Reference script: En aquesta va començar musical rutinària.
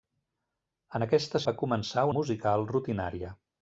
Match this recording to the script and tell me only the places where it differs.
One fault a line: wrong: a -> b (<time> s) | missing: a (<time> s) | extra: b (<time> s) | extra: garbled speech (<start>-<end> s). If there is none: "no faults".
no faults